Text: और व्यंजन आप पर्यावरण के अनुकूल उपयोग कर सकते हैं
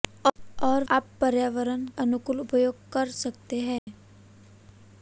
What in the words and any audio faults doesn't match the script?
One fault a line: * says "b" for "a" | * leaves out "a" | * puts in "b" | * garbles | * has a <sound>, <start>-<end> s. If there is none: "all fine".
* leaves out "व्यंजन"
* leaves out "के"
* has a dropout, 3.8-3.9 s